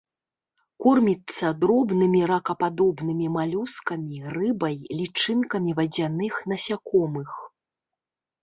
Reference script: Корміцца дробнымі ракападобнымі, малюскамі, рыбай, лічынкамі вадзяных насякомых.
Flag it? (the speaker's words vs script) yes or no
no